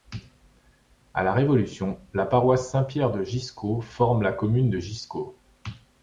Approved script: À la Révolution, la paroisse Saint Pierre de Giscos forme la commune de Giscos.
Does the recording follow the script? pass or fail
pass